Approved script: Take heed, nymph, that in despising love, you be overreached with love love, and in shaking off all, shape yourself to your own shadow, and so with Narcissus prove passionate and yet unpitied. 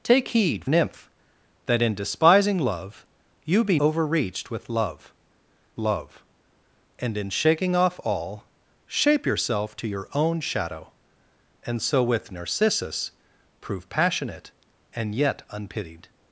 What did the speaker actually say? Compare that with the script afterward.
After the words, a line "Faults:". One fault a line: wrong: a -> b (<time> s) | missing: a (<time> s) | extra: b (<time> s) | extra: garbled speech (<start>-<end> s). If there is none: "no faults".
Take heed, nymph, that in despising love, you be overreached with love love, and in shaking off all, shape yourself to your own shadow, and so with Narcissus prove passionate and yet unpitied.
Faults:
no faults